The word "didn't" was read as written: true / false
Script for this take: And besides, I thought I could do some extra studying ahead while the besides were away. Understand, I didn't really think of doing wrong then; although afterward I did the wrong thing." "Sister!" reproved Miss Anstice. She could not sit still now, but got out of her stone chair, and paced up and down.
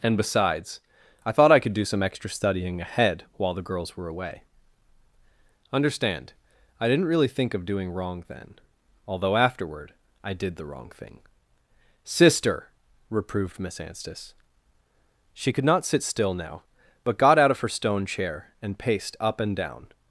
true